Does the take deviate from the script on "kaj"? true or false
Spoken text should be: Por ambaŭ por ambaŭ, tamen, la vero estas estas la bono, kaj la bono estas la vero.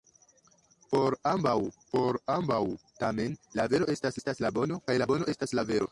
false